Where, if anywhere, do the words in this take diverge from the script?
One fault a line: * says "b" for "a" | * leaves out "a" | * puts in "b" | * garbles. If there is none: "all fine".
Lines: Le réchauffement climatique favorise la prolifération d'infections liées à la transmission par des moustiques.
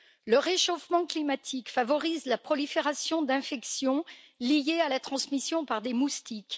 all fine